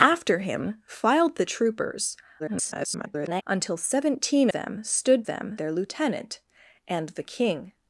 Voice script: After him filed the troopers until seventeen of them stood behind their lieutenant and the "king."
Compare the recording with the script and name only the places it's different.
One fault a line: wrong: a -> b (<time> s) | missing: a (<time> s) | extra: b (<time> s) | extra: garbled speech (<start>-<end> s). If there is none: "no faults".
extra: garbled speech (2.4-3.4 s)
missing: of (4.5 s)
wrong: behind -> them (5.3 s)